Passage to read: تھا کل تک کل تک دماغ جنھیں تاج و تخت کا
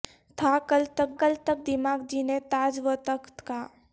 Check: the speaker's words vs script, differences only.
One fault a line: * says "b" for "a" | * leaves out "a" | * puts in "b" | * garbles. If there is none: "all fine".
all fine